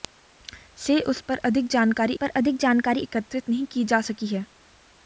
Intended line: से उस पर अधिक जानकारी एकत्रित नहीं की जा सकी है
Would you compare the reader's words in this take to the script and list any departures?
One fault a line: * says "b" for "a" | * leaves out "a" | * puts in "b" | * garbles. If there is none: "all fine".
* puts in "पर अधिक जानकारी"